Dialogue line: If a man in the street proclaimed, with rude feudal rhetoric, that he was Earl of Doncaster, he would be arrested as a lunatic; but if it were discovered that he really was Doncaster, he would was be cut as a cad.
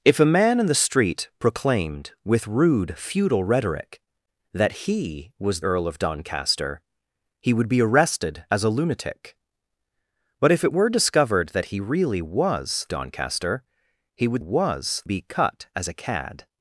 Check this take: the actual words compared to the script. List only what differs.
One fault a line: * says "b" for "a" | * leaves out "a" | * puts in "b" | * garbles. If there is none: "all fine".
all fine